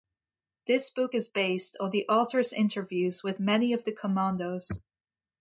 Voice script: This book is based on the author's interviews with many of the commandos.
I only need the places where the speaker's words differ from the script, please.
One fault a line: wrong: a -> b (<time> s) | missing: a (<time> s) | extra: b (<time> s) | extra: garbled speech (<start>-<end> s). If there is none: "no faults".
no faults